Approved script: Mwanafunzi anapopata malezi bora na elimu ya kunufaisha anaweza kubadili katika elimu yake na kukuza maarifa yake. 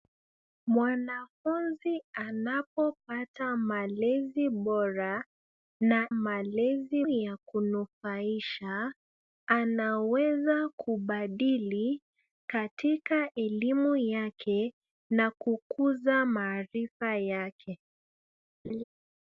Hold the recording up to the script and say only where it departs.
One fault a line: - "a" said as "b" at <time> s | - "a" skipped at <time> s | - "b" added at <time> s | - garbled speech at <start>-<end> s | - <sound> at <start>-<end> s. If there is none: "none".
- "elimu" said as "malezi" at 6.1 s
- laugh at 18.6-18.8 s